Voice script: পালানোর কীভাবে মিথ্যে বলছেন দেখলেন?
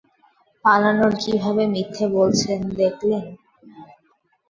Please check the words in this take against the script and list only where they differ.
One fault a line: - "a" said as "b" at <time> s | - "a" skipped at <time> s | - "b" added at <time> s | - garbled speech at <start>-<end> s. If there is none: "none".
none